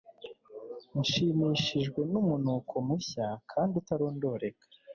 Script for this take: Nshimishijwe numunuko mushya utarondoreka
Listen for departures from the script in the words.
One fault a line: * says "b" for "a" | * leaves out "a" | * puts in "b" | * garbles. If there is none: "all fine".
* puts in "kandi"